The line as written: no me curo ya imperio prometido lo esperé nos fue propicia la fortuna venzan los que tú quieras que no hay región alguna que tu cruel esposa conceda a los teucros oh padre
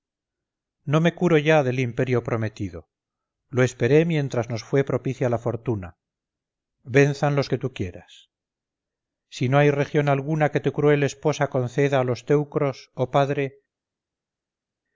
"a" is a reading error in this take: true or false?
false